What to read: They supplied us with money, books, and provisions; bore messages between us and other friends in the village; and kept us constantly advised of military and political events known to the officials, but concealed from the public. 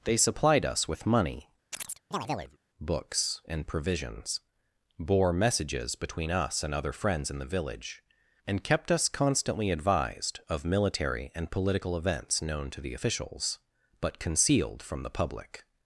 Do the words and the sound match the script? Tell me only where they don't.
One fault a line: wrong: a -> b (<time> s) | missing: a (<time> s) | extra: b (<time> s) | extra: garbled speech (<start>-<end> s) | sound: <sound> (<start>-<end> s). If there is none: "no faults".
sound: chirp (1.7-2.6 s)